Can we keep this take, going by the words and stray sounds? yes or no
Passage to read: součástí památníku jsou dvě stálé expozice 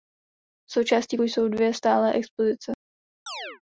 no